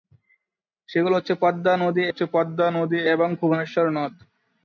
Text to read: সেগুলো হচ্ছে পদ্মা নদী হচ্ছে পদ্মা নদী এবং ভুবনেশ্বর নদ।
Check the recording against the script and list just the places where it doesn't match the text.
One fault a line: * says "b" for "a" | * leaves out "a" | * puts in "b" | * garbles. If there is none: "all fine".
all fine